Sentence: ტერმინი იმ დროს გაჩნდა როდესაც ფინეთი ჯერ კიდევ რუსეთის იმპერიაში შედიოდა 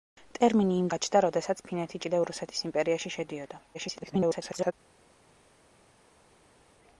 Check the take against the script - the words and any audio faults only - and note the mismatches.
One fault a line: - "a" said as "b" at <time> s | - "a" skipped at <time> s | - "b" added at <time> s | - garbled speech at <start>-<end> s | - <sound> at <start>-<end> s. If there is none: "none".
- "დროს" skipped at 0.9 s
- "ჯერ" skipped at 2.0 s
- garbled speech at 3.7-4.7 s